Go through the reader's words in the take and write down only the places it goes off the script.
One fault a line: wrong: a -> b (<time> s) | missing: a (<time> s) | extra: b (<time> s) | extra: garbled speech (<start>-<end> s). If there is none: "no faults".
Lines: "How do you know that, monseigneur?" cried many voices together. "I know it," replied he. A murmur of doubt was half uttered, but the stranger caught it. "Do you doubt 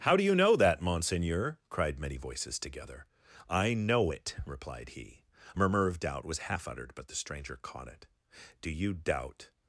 no faults